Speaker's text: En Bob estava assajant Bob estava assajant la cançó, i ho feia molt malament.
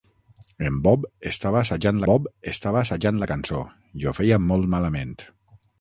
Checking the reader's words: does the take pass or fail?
pass